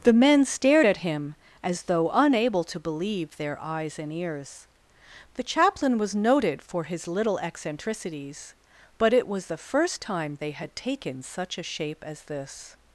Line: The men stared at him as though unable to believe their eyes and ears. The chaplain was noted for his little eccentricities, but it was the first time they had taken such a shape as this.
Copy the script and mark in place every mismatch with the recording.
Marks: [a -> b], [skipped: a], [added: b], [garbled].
The men stared at him as though unable to believe their eyes and ears. The chaplain was noted for his little eccentricities, but it was the first time they had taken such a shape as this.